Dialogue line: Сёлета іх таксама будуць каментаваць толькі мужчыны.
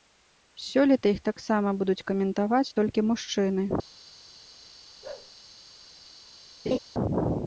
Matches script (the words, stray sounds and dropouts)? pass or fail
fail